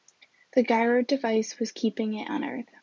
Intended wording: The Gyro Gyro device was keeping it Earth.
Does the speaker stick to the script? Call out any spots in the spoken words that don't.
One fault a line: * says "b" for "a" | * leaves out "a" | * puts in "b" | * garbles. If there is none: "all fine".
* leaves out "Gyro"
* puts in "on"